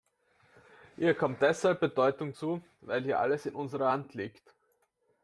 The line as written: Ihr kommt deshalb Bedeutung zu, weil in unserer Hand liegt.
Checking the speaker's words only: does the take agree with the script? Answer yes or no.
no